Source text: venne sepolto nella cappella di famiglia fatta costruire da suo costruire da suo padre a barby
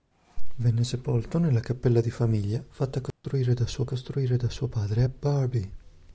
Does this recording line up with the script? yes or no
yes